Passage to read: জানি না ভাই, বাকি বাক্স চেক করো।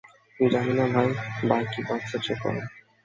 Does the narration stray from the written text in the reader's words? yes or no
no